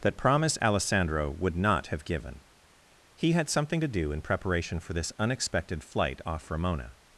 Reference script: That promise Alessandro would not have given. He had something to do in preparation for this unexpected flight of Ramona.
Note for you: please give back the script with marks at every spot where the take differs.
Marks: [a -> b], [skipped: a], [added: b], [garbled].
That promise Alessandro would not have given. He had something to do in preparation for this unexpected flight [of -> off] Ramona.